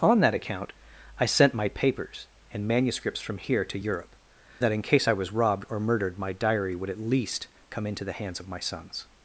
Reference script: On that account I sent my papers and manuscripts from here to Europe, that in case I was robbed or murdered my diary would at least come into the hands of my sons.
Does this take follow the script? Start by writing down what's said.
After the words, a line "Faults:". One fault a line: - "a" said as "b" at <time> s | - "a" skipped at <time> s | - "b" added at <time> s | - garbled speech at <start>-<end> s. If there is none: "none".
On that account I sent my papers and manuscripts from here to Europe, that in case I was robbed or murdered my diary would at least come into the hands of my sons.
Faults:
none